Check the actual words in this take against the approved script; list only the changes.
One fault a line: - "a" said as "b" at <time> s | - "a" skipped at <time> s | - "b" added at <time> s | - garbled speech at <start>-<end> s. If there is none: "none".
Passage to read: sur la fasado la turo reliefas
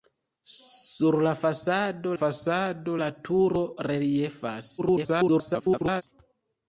- "fasado" added at 2.2 s
- garbled speech at 4.8-6.0 s